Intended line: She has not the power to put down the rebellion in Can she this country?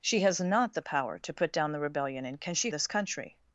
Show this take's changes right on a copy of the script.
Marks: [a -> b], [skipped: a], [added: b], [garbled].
She has not the power to put down the rebellion in Can she this country?